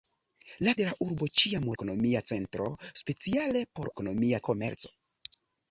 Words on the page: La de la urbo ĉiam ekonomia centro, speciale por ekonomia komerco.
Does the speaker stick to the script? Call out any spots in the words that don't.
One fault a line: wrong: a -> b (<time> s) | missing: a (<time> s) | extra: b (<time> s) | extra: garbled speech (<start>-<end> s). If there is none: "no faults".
no faults